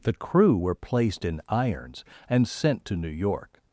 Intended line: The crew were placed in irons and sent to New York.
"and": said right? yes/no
yes